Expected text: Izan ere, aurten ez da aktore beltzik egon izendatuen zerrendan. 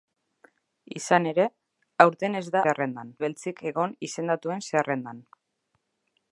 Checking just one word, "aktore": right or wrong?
wrong